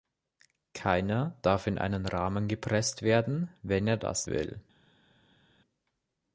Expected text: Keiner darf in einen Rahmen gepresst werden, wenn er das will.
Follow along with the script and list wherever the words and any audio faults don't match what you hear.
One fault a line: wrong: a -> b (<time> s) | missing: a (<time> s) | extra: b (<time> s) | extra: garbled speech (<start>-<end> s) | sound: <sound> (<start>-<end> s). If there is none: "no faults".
no faults